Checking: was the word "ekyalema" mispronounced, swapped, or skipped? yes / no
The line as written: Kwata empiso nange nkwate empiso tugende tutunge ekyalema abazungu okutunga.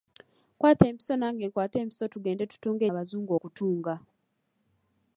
yes